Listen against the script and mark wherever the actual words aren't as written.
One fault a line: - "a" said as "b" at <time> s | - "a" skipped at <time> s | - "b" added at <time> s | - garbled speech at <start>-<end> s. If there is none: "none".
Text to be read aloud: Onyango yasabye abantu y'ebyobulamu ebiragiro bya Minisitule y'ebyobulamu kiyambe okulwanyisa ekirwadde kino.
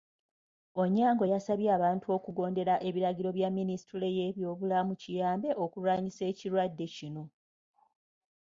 - "y'ebyobulamu" said as "okugondera" at 2.2 s